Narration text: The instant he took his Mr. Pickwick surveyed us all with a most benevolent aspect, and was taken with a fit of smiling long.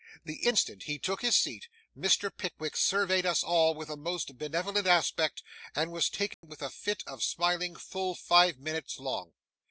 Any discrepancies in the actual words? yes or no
yes